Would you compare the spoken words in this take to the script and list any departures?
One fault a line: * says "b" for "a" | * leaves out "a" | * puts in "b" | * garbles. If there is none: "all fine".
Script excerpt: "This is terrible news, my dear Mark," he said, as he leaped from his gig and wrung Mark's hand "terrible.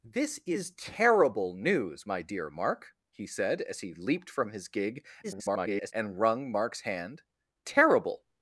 * garbles